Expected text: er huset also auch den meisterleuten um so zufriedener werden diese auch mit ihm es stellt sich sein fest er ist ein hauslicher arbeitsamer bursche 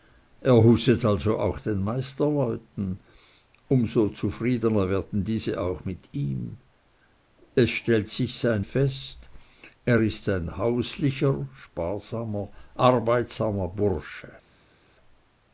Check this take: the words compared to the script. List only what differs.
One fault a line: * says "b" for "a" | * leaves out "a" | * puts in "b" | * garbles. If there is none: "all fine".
all fine